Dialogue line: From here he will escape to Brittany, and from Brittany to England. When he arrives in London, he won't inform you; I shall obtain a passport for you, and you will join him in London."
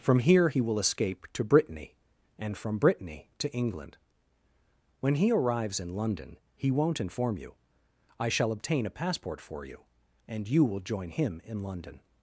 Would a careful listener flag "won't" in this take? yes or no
no